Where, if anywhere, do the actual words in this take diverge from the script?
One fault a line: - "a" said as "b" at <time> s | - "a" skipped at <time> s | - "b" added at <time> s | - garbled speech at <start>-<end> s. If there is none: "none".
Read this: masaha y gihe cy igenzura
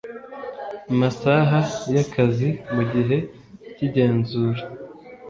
- "akazi mu" added at 2.0 s